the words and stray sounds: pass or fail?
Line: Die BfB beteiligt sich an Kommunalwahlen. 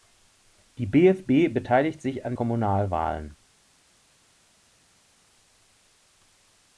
pass